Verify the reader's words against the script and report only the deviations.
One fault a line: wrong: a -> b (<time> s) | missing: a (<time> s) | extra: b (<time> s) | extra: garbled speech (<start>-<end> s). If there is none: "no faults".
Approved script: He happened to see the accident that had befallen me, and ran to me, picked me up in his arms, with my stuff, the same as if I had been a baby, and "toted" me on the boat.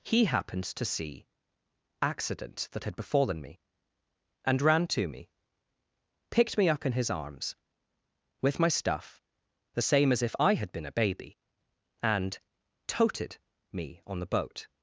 missing: the (1.2 s)